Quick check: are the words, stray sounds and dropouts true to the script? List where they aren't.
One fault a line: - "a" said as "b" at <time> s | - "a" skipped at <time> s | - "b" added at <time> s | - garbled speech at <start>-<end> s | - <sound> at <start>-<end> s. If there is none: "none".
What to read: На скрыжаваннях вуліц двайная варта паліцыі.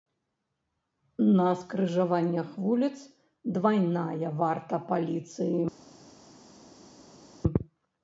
none